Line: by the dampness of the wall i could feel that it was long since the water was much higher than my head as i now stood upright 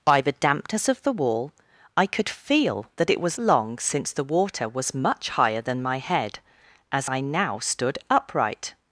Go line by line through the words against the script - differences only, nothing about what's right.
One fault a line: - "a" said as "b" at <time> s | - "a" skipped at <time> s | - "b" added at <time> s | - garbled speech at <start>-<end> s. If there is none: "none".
none